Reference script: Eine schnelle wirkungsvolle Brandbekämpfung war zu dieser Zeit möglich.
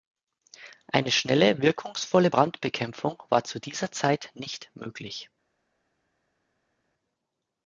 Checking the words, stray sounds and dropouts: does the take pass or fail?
fail